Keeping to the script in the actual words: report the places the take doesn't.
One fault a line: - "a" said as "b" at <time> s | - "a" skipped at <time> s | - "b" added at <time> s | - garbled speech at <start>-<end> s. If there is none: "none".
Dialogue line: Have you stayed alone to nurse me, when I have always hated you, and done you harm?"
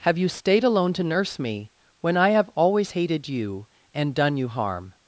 none